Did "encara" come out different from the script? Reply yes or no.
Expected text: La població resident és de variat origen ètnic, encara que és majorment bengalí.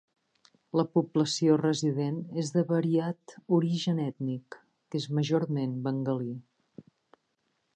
yes